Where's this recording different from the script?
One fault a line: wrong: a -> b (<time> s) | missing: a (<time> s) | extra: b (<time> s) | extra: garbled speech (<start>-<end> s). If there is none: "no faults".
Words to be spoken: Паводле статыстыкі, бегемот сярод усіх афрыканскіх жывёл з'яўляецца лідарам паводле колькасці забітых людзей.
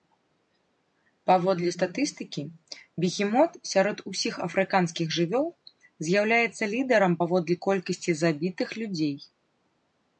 no faults